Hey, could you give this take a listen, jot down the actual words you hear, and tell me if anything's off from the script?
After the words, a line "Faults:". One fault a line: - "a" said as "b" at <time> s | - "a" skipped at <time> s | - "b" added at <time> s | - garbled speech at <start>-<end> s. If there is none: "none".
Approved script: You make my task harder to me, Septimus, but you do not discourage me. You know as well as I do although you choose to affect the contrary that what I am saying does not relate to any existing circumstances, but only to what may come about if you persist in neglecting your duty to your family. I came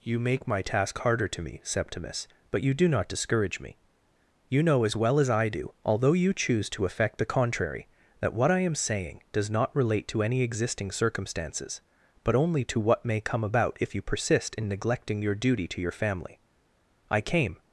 You make my task harder to me, Septimus, but you do not discourage me. You know as well as I do although you choose to affect the contrary that what I am saying does not relate to any existing circumstances, but only to what may come about if you persist in neglecting your duty to your family. I came
Faults:
none